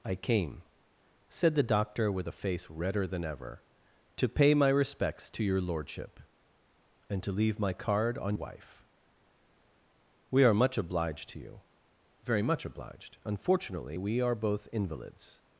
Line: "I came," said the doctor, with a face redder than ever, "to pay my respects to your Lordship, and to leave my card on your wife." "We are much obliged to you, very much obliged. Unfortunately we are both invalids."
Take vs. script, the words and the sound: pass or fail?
fail